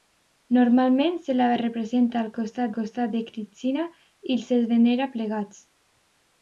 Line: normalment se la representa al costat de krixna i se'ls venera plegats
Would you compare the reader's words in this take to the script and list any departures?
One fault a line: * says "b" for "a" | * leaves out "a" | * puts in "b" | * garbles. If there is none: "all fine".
* puts in "costat"